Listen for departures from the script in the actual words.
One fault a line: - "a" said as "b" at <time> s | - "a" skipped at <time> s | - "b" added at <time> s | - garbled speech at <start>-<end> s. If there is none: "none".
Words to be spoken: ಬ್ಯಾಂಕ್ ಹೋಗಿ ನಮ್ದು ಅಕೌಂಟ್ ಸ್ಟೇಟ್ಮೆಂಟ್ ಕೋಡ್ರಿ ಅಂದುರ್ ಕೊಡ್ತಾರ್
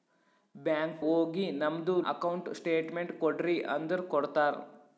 none